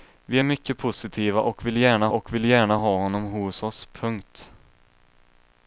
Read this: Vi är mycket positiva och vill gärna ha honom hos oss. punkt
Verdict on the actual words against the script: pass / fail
fail